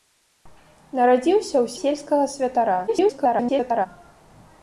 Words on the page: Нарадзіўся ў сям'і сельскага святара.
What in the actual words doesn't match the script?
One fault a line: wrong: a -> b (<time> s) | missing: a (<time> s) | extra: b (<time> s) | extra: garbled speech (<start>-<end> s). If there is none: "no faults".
missing: сям'і (1.8 s)
extra: garbled speech (2.9-3.9 s)